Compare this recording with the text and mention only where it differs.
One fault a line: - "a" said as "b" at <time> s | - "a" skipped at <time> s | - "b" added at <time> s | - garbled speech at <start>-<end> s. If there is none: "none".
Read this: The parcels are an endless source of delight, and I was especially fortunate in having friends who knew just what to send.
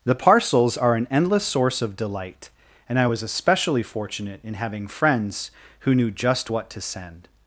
none